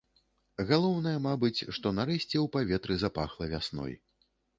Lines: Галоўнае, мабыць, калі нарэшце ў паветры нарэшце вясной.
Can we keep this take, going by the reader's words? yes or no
no